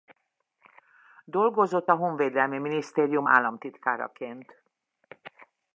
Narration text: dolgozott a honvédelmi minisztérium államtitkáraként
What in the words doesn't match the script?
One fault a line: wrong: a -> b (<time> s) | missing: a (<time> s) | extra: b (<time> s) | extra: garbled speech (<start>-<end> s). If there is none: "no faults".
no faults